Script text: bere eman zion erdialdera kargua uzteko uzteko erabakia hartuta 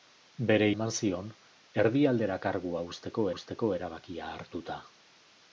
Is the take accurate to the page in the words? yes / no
yes